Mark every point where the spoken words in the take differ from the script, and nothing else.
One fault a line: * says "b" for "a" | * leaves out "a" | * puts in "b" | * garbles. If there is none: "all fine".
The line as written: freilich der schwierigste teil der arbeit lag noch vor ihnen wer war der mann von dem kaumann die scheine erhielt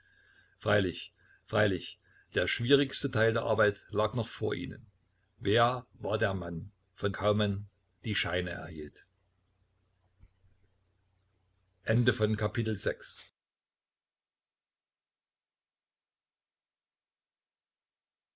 * puts in "freilich"
* leaves out "dem"